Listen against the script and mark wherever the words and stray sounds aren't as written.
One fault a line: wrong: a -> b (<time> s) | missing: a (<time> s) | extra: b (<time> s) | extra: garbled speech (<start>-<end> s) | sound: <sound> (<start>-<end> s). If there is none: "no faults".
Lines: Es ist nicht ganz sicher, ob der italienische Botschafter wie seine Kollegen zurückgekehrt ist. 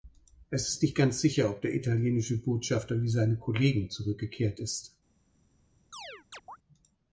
sound: chirp (5.9-6.6 s)